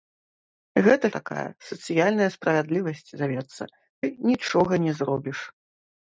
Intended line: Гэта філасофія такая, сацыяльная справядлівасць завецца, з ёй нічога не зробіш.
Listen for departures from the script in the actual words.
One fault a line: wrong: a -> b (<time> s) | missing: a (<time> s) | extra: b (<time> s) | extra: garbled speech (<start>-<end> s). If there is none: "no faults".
missing: філасофія (1.1 s)
missing: з (3.6 s)